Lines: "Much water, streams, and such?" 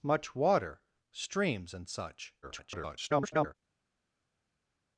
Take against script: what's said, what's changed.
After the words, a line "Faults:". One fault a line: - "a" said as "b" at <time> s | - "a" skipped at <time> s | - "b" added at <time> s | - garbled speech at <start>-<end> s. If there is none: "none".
"Much water, streams, and such?" [garbled]
Faults:
- garbled speech at 2.4-3.5 s